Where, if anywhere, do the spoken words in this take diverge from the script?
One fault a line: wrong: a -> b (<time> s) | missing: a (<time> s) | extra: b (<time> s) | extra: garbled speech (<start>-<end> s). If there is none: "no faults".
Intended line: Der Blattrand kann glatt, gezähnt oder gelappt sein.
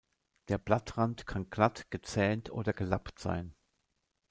no faults